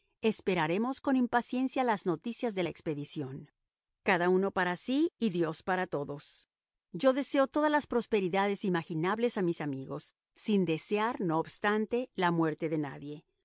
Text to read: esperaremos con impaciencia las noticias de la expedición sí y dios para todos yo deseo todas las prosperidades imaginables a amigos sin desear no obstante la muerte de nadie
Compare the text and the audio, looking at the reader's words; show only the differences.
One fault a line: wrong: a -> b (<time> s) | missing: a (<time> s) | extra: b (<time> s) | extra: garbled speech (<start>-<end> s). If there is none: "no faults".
extra: cada uno para (4.0 s)
extra: mis (9.4 s)